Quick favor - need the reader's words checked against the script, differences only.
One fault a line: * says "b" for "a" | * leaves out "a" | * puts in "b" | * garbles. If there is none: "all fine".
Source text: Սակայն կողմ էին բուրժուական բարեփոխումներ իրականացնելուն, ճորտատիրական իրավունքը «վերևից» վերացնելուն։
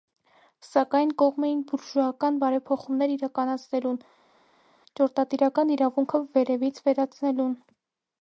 all fine